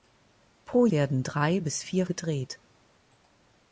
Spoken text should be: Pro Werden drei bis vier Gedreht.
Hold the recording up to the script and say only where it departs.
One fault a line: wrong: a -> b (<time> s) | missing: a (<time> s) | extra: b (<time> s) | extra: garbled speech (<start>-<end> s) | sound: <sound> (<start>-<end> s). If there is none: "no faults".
no faults